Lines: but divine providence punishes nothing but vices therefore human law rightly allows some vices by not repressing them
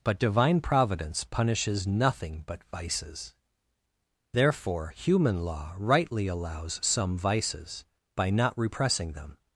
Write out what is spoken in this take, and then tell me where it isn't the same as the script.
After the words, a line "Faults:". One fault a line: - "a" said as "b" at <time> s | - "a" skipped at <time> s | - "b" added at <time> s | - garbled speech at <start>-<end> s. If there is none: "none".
but divine providence punishes nothing but vices therefore human law rightly allows some vices by not repressing them
Faults:
none